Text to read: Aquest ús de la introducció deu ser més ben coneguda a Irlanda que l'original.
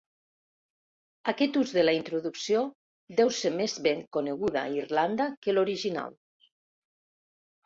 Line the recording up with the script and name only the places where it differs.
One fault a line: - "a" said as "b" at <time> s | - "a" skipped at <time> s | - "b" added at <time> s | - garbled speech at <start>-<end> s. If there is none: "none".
none